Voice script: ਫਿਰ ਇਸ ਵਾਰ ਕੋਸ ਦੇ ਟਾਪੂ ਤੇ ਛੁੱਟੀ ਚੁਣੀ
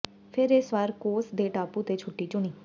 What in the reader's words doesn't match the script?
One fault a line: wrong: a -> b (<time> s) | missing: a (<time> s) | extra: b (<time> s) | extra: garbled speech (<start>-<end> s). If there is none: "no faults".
no faults